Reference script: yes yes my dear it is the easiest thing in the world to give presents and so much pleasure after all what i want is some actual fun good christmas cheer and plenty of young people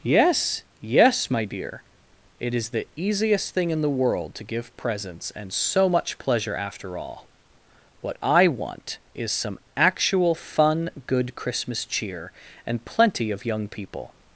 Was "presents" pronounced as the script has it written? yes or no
yes